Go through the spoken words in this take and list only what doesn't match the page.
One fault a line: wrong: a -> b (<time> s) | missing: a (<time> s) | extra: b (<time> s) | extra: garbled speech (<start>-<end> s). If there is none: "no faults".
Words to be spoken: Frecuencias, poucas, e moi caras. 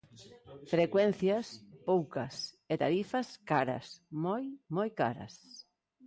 extra: tarifas caras moi (2.8 s)